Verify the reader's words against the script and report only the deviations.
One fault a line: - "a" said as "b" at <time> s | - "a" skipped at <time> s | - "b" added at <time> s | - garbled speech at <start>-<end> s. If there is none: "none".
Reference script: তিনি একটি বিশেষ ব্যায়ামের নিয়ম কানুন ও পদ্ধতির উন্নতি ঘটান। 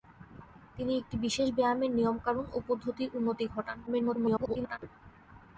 - garbled speech at 3.9-4.8 s